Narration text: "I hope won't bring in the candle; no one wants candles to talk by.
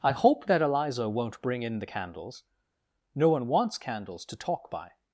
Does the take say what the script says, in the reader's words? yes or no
no